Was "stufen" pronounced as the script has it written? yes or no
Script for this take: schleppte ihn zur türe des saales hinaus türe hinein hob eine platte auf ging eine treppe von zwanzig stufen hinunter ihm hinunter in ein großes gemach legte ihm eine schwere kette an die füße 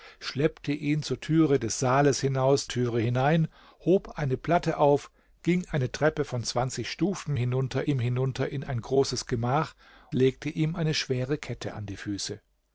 yes